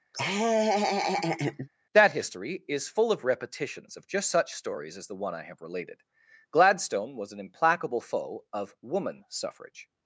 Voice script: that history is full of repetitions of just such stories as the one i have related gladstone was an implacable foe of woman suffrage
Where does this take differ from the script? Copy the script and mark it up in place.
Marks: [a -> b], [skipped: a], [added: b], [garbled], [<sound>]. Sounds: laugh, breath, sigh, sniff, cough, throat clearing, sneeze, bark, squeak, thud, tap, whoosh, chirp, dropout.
[laugh] that history is full of repetitions of just such stories as the one i have related gladstone was an implacable foe of woman suffrage